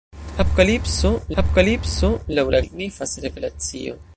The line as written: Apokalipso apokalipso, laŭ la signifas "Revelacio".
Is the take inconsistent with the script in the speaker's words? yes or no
no